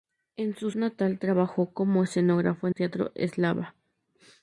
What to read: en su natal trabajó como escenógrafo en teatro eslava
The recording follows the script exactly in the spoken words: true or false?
true